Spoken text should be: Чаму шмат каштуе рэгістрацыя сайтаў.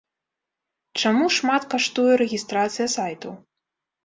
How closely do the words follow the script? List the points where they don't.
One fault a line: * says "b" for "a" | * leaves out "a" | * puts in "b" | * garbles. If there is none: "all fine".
all fine